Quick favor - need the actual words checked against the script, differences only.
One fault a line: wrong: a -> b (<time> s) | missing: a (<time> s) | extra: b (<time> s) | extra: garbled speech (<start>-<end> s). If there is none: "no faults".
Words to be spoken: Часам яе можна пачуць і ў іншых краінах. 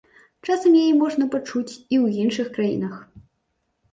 no faults